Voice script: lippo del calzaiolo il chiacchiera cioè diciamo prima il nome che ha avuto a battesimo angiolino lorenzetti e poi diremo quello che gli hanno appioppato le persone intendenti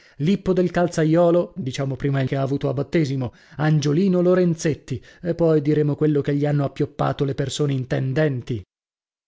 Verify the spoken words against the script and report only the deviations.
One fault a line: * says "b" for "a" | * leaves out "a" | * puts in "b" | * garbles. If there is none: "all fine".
* leaves out "il chiacchiera cioè"
* leaves out "nome"